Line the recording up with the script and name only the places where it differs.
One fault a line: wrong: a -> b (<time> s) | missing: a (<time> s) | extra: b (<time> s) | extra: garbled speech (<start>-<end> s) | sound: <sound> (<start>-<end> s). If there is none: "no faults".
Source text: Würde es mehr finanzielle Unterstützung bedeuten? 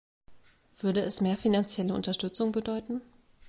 no faults